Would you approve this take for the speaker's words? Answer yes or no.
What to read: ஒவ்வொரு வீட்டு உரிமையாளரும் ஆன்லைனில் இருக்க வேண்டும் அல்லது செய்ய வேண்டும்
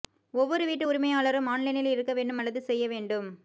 yes